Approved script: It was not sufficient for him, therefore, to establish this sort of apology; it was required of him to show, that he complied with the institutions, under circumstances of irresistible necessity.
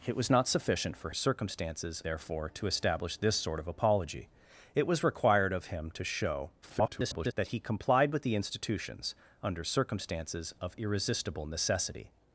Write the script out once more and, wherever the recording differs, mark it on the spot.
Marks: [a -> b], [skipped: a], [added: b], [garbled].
It was not sufficient for [him, -> circumstances] therefore, to establish this sort of apology; it was required of him to show, [garbled] that he complied with the institutions, under circumstances of irresistible necessity.